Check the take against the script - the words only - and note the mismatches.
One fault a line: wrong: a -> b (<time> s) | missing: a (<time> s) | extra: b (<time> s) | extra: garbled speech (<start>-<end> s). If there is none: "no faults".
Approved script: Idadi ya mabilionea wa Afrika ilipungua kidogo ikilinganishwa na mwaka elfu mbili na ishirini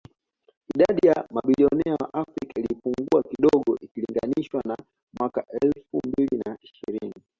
no faults